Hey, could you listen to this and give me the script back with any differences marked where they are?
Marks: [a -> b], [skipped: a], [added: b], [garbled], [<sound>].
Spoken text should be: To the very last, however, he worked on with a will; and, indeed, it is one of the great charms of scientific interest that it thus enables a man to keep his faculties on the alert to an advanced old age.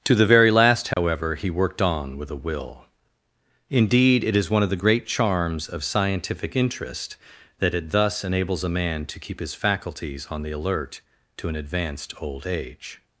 To the very last, however, [dropout] he worked on with a will; [skipped: and,] indeed, it is one of the great charms of scientific interest that it thus enables a man to keep his faculties on the alert to an advanced old age.